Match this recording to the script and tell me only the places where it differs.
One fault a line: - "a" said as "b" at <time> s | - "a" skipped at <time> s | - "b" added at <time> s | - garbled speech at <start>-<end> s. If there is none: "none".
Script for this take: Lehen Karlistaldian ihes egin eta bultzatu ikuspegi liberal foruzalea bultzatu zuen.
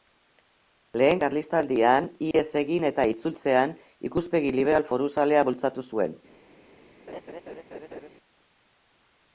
- "bultzatu" said as "itzultzean" at 3.1 s